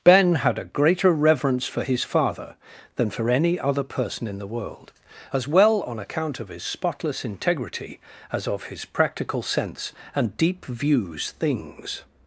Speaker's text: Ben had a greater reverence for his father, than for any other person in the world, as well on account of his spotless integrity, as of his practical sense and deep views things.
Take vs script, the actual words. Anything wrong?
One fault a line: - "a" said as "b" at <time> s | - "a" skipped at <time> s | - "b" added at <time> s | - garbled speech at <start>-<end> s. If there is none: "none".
none